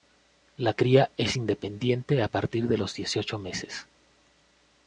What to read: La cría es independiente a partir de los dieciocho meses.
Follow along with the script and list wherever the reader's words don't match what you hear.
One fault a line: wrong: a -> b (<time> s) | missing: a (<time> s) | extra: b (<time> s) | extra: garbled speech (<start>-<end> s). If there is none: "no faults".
no faults